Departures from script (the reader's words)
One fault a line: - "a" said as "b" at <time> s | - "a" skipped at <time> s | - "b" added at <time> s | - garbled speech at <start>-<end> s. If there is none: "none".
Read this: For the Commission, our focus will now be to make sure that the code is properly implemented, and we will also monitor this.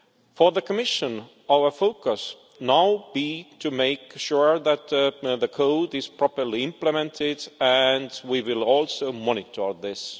- "will" skipped at 2.4 s